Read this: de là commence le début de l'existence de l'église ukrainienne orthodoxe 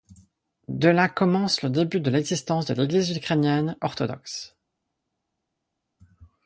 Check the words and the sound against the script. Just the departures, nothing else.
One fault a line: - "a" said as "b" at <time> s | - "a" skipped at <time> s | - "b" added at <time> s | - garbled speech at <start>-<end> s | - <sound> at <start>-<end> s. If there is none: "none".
none